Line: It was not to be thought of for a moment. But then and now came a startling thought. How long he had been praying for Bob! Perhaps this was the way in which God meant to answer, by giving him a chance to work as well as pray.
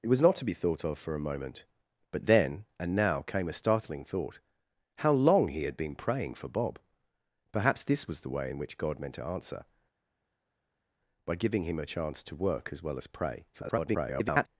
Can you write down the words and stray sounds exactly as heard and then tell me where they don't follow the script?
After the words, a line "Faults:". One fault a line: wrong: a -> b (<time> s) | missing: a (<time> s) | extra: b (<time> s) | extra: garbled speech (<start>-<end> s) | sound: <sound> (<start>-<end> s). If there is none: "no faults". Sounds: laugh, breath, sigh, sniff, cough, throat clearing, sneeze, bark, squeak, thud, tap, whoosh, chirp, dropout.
It was not to be thought of for a moment. But then and now came a startling thought. How long he had been praying for Bob! Perhaps this was the way in which God meant to answer, by giving him a chance to work as well as pray. [garbled]
Faults:
extra: garbled speech (13.5-14.5 s)